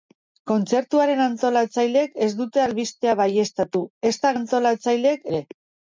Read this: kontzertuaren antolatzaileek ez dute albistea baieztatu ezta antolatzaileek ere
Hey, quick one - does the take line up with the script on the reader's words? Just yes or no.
yes